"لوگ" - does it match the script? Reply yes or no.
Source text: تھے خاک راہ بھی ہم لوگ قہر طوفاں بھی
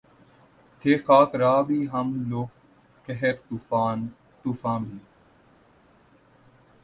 yes